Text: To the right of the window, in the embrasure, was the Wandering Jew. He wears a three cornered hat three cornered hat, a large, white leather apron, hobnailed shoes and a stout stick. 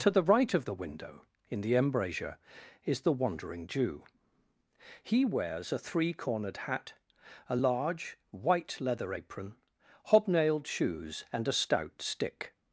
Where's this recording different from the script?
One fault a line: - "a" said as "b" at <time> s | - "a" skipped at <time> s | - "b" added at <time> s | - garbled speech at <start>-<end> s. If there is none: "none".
- "was" said as "is" at 2.8 s
- "three cornered hat" skipped at 6.9 s